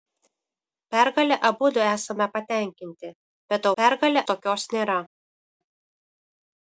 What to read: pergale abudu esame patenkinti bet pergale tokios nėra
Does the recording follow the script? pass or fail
pass